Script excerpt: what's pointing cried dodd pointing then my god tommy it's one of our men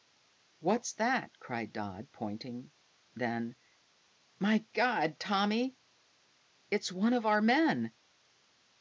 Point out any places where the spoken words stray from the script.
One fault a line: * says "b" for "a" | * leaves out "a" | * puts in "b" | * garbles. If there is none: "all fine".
* says "that" for "pointing"